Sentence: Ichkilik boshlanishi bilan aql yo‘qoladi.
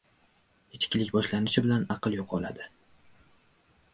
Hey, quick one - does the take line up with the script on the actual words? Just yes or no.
yes